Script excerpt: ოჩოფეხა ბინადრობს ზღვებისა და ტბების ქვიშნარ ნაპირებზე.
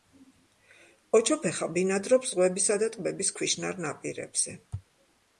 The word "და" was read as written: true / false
true